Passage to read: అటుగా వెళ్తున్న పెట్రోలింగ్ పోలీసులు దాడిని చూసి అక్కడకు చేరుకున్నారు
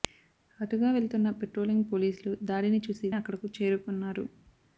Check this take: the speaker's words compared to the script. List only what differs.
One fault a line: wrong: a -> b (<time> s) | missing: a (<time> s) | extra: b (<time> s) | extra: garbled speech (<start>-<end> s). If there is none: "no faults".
no faults